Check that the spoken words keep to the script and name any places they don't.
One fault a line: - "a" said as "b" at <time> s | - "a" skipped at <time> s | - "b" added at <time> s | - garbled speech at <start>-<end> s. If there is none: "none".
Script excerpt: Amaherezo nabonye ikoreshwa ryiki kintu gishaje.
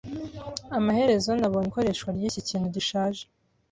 none